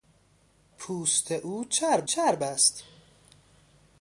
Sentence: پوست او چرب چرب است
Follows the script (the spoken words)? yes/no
yes